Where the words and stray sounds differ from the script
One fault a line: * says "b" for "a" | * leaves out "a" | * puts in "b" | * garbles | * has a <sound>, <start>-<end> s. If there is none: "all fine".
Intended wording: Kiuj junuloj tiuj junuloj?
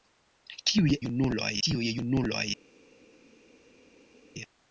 all fine